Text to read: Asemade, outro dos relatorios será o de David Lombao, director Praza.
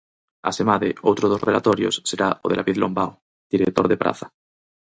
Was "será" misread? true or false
false